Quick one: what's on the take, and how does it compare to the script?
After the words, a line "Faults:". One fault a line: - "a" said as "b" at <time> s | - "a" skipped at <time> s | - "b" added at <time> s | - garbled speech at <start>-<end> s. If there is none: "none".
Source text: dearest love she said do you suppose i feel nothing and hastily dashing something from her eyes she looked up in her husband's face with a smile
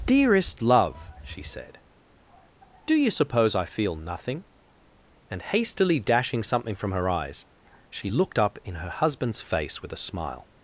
dearest love she said do you suppose i feel nothing and hastily dashing something from her eyes she looked up in her husband's face with a smile
Faults:
none